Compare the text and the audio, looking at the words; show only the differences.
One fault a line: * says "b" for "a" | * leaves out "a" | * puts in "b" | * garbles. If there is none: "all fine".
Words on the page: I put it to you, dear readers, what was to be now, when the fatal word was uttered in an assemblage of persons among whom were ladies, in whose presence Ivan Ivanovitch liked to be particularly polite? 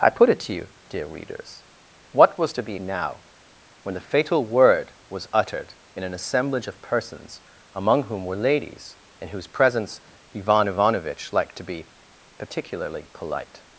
all fine